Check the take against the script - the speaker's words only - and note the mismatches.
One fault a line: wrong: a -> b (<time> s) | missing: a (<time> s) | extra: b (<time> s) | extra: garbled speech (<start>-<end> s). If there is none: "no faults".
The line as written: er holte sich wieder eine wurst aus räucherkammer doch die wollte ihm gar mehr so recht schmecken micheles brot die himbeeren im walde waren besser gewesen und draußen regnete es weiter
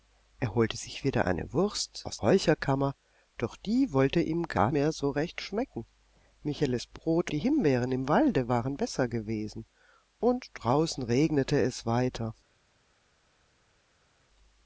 no faults